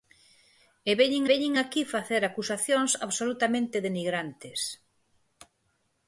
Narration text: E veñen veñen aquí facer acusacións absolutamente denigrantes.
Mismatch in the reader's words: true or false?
false